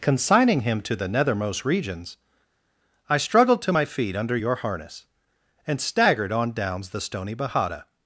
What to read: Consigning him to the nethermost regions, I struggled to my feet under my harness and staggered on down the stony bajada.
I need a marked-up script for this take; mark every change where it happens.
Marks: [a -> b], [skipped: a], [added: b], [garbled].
Consigning him to the nethermost regions, I struggled to my feet under [my -> your] harness and staggered on [down -> downs] the stony bajada.